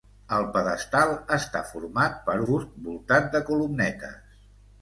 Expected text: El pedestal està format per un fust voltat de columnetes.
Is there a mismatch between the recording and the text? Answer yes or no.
yes